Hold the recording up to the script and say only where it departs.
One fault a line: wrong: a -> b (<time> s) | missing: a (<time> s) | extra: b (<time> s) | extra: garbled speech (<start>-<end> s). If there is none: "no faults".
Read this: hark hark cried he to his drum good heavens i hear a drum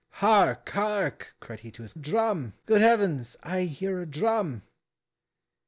no faults